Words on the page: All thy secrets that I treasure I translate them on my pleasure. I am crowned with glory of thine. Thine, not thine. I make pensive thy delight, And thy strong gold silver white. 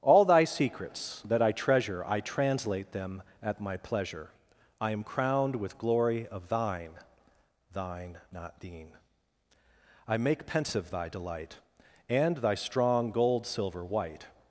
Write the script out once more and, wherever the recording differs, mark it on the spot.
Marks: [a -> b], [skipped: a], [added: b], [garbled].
All thy secrets that I treasure I translate them [on -> at] my pleasure. I am crowned with glory of thine. Thine, not thine. I make pensive thy delight, And thy strong gold silver white.